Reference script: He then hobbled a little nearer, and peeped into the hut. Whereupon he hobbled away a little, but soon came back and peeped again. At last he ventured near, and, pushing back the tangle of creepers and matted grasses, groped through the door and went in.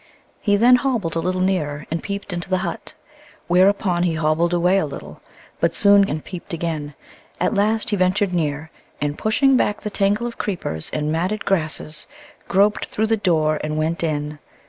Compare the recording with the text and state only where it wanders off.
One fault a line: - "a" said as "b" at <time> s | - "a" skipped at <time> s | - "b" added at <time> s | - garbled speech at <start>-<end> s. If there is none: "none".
- "came back" skipped at 6.0 s